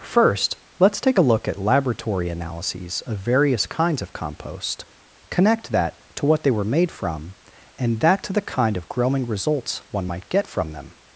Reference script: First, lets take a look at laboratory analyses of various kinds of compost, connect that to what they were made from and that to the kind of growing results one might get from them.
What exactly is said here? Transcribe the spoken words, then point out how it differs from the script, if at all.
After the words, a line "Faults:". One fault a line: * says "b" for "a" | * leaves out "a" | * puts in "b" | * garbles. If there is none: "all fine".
First, lets take a look at laboratory analyses of various kinds of compost, connect that to what they were made from and that to the kind of growing results one might get from them.
Faults:
all fine